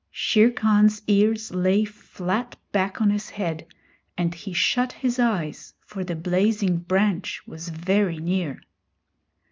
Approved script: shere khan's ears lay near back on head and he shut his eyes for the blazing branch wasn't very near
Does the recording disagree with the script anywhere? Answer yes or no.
yes